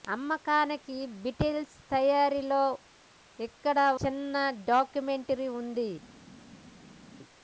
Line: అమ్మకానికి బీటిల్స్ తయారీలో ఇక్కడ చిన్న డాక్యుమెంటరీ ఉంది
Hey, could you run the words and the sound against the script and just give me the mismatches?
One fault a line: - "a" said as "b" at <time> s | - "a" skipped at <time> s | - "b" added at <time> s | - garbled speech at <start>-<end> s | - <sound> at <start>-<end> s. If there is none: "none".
none